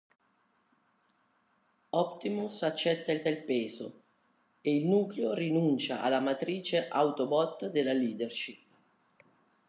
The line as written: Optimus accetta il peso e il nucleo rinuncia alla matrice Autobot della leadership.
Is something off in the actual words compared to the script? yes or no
yes